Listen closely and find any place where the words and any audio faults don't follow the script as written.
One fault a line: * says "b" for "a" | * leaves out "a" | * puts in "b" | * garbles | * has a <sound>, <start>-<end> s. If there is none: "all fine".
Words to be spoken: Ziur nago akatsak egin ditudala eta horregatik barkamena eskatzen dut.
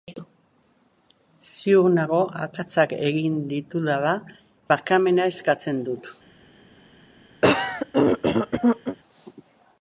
* leaves out "eta horregatik"
* has a throat clearing, 7.4-9.0 s